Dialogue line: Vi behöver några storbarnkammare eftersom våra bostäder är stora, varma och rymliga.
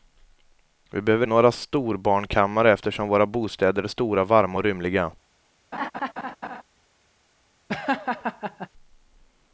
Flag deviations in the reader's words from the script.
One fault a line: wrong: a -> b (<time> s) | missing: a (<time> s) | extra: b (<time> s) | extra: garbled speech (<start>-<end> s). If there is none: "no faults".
no faults